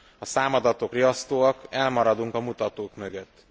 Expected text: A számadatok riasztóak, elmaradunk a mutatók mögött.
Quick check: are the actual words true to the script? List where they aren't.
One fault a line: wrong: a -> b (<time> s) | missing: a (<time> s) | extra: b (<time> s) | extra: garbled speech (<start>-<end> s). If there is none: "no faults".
no faults